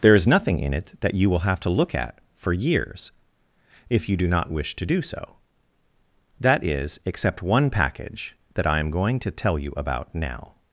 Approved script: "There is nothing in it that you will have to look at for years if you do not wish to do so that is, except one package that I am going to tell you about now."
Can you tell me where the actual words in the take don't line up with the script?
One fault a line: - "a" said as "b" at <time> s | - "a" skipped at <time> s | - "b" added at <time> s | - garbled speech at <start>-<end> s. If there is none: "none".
none